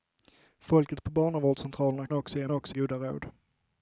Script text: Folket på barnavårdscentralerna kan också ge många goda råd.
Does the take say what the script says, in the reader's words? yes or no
no